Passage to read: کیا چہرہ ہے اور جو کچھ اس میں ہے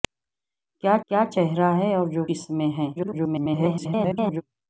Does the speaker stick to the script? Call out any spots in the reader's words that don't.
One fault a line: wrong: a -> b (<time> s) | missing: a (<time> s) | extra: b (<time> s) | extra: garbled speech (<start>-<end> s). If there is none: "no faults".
extra: کیا (1.1 s)
missing: کچھ (2.2 s)
extra: garbled speech (2.9-4.4 s)